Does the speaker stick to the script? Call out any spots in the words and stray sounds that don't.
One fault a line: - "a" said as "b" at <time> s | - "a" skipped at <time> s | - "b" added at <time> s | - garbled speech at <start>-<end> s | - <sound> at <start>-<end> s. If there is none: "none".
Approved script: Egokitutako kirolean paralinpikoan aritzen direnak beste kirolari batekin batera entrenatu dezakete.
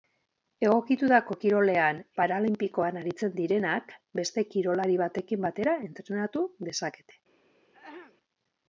- throat clearing at 7.7-8.2 s